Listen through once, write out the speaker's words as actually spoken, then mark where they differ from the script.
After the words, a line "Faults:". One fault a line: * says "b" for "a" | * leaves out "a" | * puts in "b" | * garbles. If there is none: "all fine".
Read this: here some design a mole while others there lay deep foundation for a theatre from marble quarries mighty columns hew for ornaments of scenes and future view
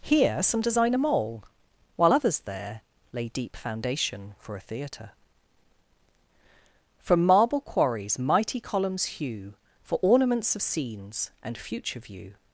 here some design a mole while others there lay deep foundation for a theatre from marble quarries mighty columns hew for ornaments of scenes and future view
Faults:
all fine